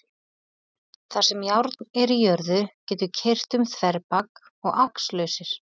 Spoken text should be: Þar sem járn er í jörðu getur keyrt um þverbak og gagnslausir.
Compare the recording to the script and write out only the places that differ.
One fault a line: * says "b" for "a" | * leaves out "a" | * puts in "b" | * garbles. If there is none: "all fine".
all fine